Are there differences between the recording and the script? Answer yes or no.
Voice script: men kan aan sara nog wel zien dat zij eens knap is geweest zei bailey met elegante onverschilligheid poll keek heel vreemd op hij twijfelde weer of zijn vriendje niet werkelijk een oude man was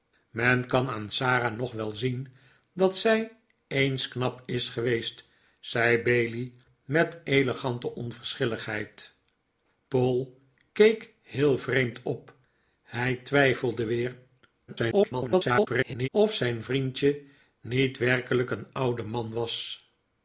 yes